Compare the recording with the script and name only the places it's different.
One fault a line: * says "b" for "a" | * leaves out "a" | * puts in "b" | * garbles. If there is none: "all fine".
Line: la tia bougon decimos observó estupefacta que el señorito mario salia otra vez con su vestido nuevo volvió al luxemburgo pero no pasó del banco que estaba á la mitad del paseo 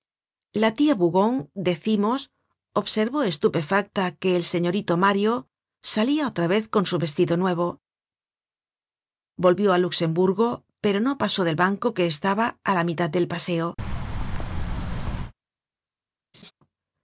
all fine